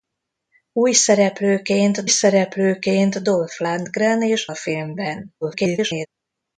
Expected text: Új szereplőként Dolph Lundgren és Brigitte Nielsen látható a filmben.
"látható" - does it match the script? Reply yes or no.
no